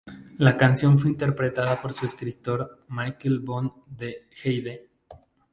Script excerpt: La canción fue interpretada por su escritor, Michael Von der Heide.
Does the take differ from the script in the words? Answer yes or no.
no